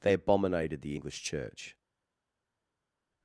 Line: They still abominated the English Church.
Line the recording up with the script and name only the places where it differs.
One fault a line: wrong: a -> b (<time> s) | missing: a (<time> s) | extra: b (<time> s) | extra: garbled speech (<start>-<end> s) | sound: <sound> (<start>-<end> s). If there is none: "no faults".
missing: still (0.1 s)